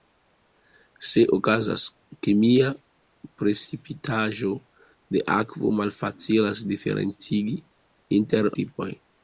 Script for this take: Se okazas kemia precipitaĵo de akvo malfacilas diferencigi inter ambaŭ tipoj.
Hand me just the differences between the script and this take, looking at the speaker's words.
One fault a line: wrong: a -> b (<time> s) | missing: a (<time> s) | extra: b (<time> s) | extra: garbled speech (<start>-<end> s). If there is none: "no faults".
missing: ambaŭ (8.5 s)